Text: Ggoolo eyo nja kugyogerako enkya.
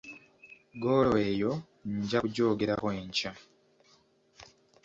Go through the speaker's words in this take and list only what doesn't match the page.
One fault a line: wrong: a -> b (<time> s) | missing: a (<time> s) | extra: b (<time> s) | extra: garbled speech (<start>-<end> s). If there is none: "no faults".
no faults